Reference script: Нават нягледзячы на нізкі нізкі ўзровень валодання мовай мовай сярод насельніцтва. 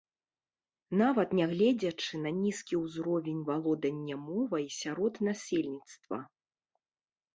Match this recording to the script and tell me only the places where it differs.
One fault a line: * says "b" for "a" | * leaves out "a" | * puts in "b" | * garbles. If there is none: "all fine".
* leaves out "нізкі"
* leaves out "мовай"